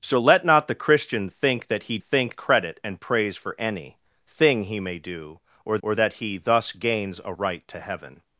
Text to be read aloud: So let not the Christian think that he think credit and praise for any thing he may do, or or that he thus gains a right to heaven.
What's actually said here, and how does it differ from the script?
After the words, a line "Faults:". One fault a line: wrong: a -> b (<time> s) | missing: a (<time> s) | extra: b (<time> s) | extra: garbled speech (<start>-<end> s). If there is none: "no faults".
So let not the Christian think that he think credit and praise for any thing he may do, or or that he thus gains a right to heaven.
Faults:
no faults